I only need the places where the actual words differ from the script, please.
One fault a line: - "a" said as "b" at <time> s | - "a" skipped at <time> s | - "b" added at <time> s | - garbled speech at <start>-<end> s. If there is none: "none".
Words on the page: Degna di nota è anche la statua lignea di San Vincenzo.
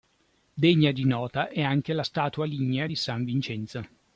none